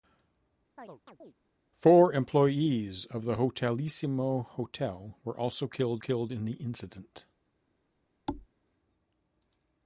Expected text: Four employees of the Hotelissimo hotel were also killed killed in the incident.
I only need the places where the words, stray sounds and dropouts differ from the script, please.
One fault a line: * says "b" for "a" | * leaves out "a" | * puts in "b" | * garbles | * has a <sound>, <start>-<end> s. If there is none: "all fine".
* has a chirp, 0.8-1.3 s
* has a thud, 8.3-8.5 s